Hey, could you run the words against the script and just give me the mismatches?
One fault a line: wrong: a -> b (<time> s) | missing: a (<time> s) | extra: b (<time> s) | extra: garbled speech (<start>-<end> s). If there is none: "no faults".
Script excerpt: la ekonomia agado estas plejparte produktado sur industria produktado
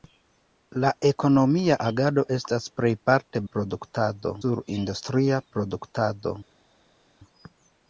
no faults